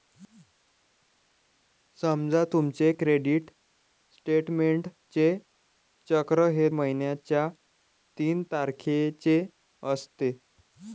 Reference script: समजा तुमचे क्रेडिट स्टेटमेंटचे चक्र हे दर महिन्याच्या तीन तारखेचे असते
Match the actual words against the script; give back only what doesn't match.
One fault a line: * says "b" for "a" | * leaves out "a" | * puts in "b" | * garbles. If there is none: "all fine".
* leaves out "दर"